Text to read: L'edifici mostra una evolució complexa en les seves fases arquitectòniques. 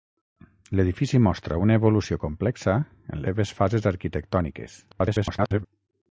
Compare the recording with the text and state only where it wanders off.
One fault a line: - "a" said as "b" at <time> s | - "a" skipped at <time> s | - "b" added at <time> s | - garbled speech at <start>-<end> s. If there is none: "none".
- "les" skipped at 3.2 s
- garbled speech at 4.9-5.7 s